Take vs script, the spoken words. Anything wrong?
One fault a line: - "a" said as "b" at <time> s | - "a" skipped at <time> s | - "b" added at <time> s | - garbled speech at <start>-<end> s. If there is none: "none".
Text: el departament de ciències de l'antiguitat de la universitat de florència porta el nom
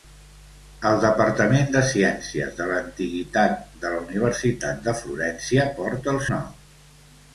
none